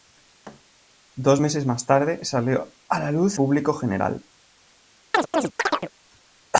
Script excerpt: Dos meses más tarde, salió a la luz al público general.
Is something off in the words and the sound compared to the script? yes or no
yes